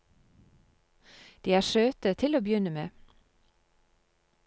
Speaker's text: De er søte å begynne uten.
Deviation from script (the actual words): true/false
true